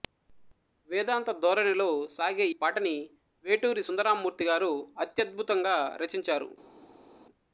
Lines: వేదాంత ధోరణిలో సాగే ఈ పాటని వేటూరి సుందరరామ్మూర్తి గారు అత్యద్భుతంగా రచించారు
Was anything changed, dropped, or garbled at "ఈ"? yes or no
yes